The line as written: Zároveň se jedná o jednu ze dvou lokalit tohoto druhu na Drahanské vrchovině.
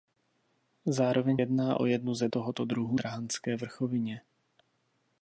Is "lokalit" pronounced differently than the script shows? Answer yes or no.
yes